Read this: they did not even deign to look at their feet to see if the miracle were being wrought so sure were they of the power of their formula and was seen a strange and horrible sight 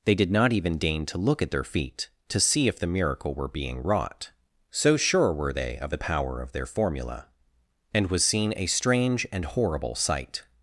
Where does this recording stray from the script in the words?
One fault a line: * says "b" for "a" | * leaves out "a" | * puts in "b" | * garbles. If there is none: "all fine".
all fine